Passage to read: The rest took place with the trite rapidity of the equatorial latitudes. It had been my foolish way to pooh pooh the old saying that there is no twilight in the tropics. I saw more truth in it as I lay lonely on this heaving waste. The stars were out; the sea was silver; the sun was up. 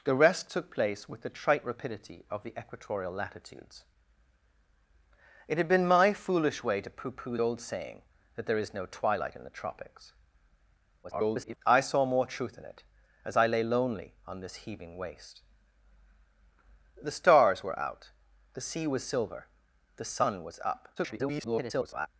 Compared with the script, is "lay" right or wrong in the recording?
right